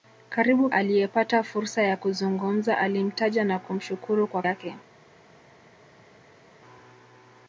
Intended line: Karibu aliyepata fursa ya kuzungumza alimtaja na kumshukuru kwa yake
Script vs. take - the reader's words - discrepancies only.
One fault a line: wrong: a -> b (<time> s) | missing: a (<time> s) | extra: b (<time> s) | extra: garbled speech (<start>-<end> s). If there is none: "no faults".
no faults